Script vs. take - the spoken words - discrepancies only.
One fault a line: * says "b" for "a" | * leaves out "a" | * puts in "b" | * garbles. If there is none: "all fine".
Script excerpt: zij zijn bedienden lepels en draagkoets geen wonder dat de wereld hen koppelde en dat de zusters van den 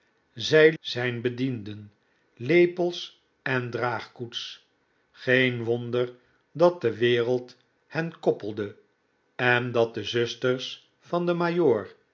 all fine